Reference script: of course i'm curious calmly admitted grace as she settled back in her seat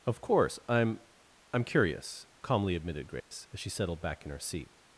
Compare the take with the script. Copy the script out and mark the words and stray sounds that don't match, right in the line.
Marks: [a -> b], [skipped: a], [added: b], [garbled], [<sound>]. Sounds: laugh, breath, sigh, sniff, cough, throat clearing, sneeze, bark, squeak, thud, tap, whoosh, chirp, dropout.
of course i'm [added: i'm] curious calmly admitted grace [dropout] as she settled back in her seat